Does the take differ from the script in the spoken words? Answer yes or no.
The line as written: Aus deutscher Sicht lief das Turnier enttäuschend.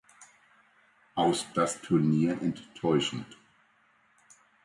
yes